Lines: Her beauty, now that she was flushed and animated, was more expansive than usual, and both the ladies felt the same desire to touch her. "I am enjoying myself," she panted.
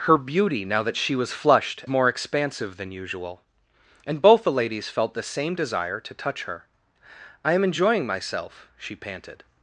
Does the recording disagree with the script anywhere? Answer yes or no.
yes